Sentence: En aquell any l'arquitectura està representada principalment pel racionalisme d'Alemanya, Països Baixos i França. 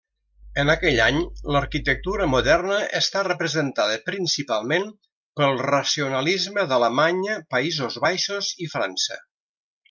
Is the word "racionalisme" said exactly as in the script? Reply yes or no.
yes